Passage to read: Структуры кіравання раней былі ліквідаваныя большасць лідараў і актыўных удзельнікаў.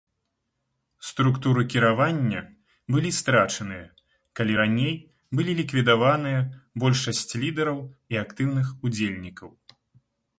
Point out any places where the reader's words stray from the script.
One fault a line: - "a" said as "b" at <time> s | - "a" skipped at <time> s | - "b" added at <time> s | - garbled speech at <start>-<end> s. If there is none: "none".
- "былі страчаныя калі" added at 3.0 s